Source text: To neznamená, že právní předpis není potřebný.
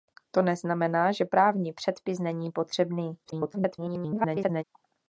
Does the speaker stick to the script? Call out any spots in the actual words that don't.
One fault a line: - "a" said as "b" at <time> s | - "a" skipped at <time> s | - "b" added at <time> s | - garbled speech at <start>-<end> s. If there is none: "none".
- garbled speech at 3.2-4.6 s